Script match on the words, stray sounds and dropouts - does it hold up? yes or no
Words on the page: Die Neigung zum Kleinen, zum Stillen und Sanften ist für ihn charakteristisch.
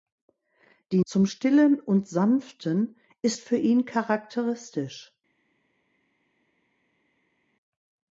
no